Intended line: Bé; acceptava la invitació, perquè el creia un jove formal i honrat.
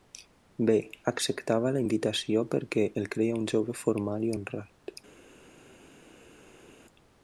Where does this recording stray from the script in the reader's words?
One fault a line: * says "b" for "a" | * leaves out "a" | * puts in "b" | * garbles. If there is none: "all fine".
all fine